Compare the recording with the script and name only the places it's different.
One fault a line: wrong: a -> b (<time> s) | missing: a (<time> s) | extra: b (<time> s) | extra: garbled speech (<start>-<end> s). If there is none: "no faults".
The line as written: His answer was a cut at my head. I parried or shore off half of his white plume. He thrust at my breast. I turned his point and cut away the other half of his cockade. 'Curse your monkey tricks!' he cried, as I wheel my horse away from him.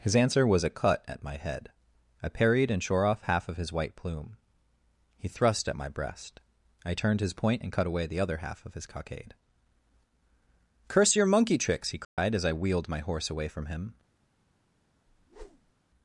wrong: or -> and (2.7 s)
wrong: wheel -> wheeled (12.5 s)